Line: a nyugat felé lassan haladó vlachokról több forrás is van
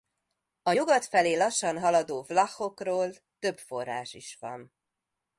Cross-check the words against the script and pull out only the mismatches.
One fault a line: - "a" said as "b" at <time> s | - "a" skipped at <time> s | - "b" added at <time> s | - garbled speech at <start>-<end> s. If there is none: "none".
none